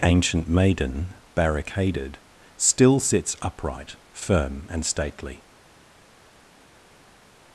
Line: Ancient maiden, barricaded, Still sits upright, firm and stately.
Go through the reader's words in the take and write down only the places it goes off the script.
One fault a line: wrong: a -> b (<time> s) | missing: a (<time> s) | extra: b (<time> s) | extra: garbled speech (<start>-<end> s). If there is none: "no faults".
no faults